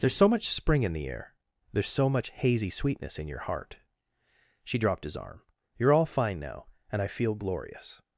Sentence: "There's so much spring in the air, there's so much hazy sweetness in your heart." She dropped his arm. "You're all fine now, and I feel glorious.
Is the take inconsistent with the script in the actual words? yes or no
no